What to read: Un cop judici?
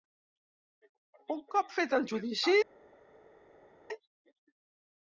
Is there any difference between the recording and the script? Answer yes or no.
yes